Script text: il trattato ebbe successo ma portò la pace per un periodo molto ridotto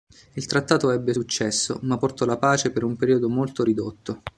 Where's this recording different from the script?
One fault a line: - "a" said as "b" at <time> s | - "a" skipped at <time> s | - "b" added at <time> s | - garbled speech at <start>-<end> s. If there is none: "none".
none